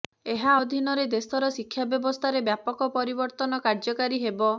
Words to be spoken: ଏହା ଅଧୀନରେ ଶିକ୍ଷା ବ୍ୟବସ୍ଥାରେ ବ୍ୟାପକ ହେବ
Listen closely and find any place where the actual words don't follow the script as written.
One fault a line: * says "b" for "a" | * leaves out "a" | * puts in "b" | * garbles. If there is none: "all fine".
* puts in "ଦେଶର"
* puts in "ପରିବର୍ତ୍ତନ କାର୍ଯ୍ୟକାରୀ"